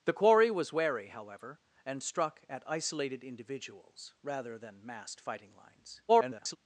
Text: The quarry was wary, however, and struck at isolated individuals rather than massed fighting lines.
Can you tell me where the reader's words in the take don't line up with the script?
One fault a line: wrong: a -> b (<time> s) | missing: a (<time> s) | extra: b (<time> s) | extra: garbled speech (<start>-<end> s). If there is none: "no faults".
extra: garbled speech (6.1-6.6 s)